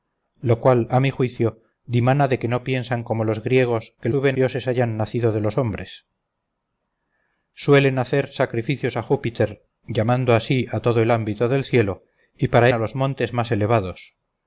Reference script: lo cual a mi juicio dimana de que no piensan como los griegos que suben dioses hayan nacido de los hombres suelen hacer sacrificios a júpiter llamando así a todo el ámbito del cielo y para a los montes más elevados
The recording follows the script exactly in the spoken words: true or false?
true